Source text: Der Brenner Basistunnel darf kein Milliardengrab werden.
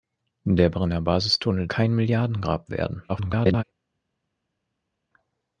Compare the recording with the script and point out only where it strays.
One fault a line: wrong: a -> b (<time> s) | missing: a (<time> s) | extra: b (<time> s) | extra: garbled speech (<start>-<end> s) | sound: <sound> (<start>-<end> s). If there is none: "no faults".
missing: darf (1.7 s)
extra: garbled speech (3.1-3.6 s)